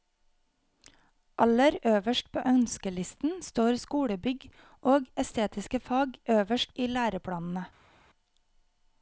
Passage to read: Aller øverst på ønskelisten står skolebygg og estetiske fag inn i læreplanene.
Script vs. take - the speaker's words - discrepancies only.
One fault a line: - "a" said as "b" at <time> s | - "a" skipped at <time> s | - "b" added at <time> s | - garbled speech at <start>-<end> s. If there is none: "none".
- "inn" said as "øverst" at 6.3 s